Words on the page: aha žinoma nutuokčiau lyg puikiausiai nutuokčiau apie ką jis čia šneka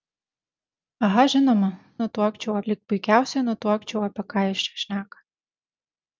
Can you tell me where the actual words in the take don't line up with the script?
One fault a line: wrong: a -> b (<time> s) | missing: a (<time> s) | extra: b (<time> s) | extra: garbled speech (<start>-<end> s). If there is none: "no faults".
no faults